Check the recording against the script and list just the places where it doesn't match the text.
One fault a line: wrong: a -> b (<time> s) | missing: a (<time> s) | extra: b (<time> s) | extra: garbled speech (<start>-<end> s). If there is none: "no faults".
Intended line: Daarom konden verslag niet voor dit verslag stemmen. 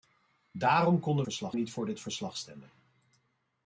no faults